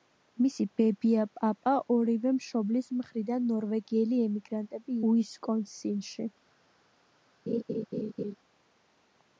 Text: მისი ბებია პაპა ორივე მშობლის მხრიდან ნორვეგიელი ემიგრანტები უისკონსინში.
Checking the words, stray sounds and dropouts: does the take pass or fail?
fail